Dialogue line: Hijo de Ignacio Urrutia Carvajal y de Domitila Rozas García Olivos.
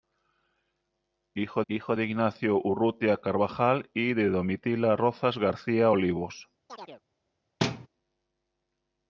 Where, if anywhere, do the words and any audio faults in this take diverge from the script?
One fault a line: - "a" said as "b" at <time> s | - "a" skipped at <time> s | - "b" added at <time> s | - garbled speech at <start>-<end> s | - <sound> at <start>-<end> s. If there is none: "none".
- "hijo" added at 1.7 s
- chirp at 6.7-7.0 s
- thud at 7.6-7.9 s